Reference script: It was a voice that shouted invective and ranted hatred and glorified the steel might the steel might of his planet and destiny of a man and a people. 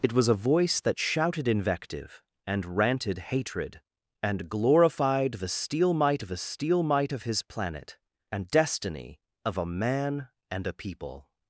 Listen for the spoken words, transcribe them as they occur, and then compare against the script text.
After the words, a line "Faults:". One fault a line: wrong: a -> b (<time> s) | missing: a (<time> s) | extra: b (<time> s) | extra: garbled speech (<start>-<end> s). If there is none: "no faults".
It was a voice that shouted invective and ranted hatred and glorified the steel might the steel might of his planet and destiny of a man and a people.
Faults:
no faults